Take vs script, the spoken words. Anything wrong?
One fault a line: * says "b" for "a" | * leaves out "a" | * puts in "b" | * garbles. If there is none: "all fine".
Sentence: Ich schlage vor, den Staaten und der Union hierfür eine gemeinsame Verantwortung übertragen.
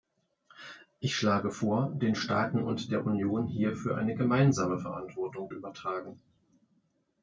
all fine